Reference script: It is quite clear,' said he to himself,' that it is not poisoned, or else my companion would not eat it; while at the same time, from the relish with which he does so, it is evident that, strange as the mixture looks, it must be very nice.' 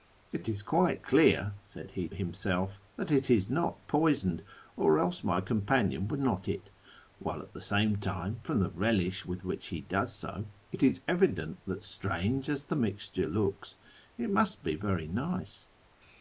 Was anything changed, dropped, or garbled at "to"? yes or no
yes